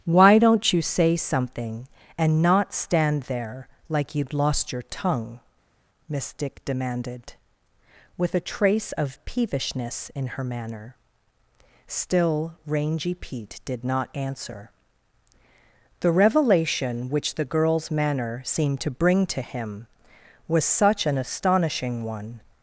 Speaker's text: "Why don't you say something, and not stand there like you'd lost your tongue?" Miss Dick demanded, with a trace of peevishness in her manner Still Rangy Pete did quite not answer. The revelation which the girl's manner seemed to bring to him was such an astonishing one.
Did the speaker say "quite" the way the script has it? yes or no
no